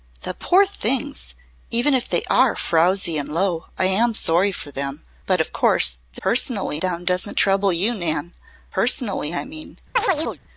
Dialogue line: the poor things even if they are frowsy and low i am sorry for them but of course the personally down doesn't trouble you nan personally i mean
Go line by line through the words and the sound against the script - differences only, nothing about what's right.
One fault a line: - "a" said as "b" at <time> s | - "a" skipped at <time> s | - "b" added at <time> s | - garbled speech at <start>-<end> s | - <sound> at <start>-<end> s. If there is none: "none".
- chirp at 10.0-10.4 s